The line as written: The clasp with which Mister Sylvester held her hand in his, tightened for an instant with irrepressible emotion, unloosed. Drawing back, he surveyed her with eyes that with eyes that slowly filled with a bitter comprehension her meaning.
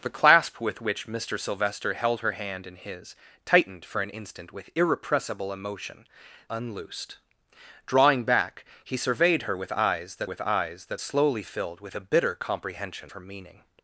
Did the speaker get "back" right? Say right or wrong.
right